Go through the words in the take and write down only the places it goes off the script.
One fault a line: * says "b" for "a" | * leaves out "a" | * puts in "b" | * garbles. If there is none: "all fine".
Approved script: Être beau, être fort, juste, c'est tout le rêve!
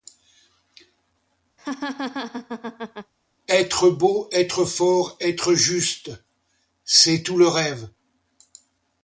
* puts in "être"